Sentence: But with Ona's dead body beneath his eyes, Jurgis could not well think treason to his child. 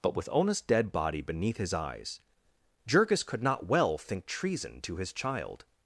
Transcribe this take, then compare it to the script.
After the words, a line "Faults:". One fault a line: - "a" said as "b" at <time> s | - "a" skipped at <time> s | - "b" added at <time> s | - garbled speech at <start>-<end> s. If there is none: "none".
But with Ona's dead body beneath his eyes, Jurgis could not well think treason to his child.
Faults:
none